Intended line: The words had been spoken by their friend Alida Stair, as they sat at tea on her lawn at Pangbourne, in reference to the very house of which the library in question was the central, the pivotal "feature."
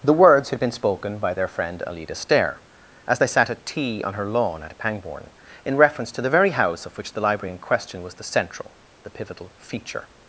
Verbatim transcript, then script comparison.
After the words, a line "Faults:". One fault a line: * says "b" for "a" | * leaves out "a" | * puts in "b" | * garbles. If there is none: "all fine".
The words had been spoken by their friend Alida Stair, as they sat at tea on her lawn at Pangbourne, in reference to the very house of which the library in question was the central, the pivotal "feature."
Faults:
all fine